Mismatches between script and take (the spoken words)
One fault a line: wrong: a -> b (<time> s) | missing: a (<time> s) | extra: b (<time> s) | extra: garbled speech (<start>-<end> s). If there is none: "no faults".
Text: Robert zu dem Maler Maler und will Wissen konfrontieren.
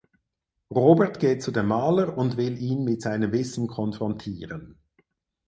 extra: geht (1.2 s)
missing: Maler (2.2 s)
extra: ihn mit seinem (2.5 s)